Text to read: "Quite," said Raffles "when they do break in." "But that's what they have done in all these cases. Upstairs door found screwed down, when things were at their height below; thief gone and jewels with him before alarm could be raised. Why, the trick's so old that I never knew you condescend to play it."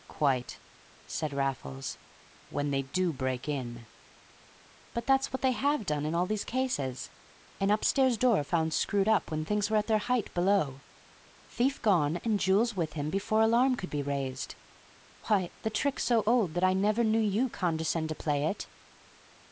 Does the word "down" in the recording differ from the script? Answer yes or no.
yes